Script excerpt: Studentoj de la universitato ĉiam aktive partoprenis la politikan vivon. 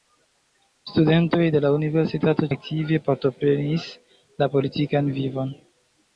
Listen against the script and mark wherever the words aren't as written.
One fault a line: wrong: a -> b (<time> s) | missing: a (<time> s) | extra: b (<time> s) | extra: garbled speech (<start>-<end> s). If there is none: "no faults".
missing: ĉiam (2.5 s)